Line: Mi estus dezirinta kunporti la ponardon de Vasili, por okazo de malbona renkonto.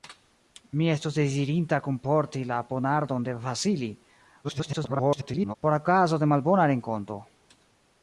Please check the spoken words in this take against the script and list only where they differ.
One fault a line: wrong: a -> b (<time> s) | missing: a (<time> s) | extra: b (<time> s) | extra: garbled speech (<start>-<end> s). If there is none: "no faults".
extra: garbled speech (4.4-5.6 s)